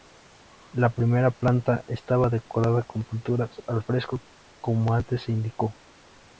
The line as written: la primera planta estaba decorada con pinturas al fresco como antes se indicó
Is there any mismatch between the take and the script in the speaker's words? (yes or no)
no